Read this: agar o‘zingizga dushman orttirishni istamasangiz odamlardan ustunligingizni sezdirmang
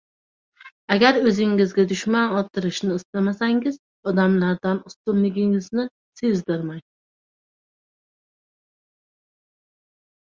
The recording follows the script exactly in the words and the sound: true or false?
true